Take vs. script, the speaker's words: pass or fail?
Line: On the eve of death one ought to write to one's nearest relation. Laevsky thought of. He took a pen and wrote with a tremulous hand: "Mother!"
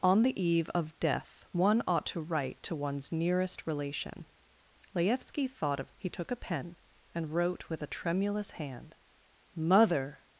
pass